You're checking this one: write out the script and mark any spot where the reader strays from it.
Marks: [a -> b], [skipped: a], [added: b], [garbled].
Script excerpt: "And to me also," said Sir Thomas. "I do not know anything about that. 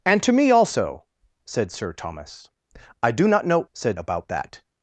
"And to me also," said Sir Thomas. "I do not know [anything -> said] about that.